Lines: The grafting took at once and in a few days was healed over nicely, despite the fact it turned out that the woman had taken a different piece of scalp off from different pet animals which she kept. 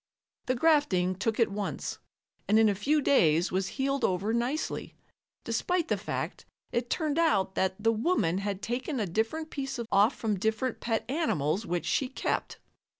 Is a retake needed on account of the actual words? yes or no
yes